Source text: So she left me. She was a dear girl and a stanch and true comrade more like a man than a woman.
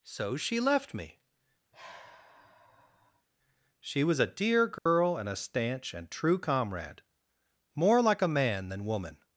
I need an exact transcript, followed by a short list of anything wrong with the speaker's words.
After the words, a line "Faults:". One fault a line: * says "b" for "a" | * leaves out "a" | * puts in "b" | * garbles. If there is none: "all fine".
So she left me. She was a dear girl and a stanch and true comrade more like a man than woman.
Faults:
* leaves out "a"